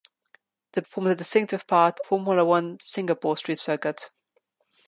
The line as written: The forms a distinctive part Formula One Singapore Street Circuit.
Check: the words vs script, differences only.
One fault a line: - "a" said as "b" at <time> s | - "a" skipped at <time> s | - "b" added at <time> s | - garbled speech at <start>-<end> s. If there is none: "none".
none